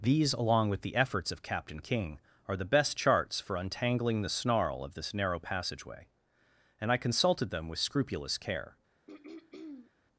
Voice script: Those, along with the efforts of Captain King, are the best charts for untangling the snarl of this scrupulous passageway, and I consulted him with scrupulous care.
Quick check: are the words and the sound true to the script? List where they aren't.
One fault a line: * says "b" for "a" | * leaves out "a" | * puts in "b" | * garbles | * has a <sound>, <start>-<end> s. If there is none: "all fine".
* says "These" for "Those"
* says "narrow" for "scrupulous"
* says "them" for "him"
* has a throat clearing, 9.1-9.9 s